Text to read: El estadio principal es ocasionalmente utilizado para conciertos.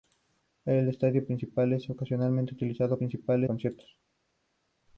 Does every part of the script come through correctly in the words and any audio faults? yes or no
no